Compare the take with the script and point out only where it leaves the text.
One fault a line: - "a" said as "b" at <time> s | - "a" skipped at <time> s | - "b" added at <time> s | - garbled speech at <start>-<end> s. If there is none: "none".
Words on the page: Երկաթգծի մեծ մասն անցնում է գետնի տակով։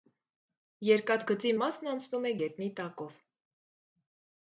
- "մեծ" skipped at 1.5 s